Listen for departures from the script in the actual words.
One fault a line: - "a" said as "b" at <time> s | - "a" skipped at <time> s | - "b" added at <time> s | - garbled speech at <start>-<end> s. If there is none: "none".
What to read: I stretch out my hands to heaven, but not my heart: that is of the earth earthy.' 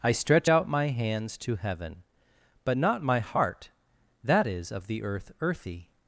none